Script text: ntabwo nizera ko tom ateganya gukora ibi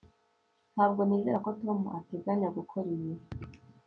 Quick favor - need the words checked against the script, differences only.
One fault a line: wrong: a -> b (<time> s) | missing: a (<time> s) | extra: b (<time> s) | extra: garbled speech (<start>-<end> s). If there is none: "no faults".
no faults